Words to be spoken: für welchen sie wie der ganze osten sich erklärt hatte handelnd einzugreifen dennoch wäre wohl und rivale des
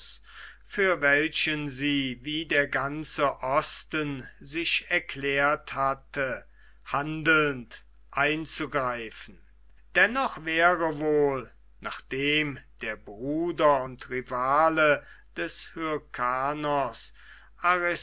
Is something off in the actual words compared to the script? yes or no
yes